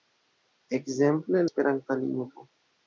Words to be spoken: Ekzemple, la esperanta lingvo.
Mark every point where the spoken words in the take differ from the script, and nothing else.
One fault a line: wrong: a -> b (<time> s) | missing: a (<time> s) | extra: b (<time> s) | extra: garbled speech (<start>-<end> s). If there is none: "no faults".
missing: la (1.4 s)